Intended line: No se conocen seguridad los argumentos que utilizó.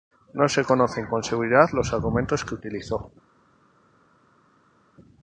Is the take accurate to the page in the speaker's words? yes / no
no